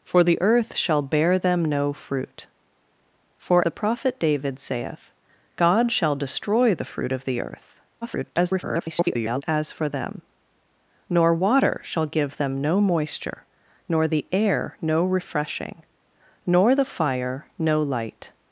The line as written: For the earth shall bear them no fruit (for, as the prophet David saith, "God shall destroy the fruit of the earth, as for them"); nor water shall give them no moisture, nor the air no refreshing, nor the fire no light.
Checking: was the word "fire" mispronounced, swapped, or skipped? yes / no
no